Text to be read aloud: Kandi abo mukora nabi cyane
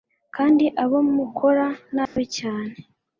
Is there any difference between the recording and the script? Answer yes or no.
no